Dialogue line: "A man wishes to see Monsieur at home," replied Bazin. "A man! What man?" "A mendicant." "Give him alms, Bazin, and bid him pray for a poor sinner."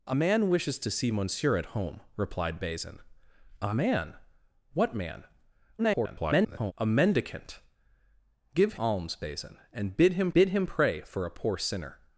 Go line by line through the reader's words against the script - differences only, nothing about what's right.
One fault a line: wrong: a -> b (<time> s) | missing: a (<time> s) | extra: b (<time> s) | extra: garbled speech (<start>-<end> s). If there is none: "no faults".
extra: garbled speech (5.8-6.7 s)
missing: him (8.7 s)
extra: bid him (10.3 s)